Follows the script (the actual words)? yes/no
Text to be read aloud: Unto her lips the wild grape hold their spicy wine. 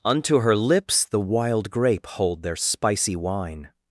yes